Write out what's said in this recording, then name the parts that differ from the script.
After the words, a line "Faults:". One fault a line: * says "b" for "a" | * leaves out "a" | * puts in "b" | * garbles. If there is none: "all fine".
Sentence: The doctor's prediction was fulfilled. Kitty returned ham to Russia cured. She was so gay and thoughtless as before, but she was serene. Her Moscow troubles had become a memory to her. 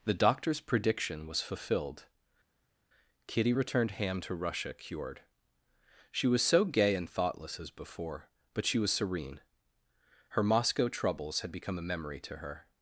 The doctor's prediction was fulfilled. Kitty returned ham to Russia cured. She was so gay and thoughtless as before, but she was serene. Her Moscow troubles had become a memory to her.
Faults:
all fine